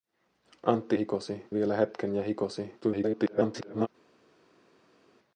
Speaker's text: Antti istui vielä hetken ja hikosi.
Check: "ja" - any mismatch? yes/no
no